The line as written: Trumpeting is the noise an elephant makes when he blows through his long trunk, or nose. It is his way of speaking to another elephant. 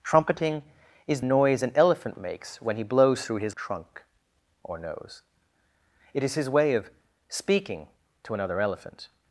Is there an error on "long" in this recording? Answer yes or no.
yes